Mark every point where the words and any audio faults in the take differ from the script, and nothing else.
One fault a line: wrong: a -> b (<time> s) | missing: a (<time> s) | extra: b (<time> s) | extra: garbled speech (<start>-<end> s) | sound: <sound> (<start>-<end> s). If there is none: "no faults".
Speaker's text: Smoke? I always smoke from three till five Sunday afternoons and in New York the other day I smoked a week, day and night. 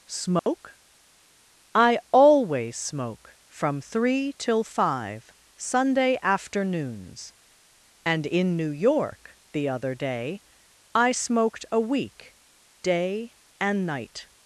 sound: dropout (0.4-0.5 s)